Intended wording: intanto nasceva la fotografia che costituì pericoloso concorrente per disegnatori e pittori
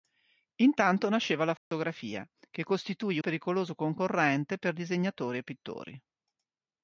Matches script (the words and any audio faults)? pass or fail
fail